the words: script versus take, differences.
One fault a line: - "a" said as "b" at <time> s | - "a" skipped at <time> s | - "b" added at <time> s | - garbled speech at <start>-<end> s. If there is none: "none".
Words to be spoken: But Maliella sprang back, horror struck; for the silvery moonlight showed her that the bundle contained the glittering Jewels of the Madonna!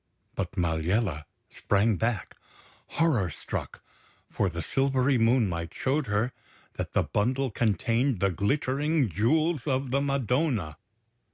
none